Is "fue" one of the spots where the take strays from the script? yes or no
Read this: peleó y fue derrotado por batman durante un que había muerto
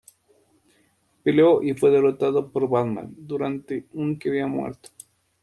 no